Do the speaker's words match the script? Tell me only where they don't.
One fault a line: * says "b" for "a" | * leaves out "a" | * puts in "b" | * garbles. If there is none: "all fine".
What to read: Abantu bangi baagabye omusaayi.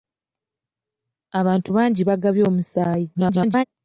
* garbles